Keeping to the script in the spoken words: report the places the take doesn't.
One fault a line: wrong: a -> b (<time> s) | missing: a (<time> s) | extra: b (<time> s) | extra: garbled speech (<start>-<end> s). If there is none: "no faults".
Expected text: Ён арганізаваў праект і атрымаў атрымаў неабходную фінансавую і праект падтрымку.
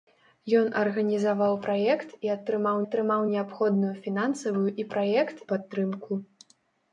no faults